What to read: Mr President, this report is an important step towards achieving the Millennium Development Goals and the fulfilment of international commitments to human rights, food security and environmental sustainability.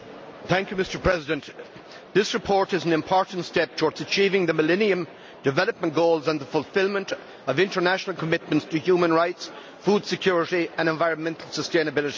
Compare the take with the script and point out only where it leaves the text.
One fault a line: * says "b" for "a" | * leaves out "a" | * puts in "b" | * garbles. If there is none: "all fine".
all fine